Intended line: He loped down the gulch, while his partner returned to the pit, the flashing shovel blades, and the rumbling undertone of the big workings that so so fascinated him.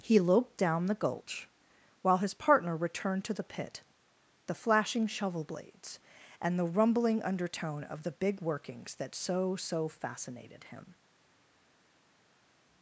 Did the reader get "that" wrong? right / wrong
right